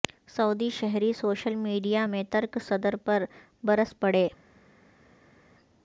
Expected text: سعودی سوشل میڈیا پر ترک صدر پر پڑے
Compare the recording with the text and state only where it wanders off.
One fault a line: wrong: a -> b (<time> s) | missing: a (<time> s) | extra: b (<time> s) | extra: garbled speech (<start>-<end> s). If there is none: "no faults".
extra: شہری (0.7 s)
wrong: پر -> میں (2.0 s)
extra: برس (3.6 s)